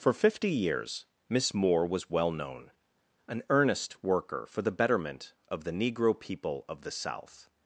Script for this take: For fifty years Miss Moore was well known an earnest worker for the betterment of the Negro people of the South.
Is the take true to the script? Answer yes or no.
yes